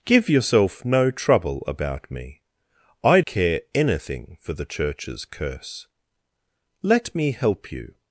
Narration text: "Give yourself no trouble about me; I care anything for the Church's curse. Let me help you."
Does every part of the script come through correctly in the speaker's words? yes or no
yes